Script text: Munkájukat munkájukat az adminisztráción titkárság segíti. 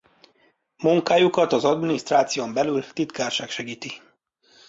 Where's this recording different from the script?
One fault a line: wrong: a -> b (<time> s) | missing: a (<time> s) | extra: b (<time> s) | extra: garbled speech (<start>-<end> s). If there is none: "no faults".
missing: munkájukat (1.5 s)
extra: belül (2.5 s)